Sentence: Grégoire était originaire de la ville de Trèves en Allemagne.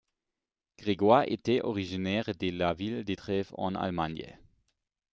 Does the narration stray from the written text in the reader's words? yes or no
no